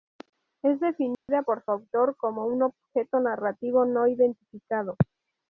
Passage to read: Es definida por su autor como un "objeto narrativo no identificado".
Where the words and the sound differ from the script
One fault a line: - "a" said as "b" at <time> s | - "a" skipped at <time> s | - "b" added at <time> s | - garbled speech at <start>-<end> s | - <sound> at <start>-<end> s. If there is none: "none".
- dropout at 1.1-1.3 s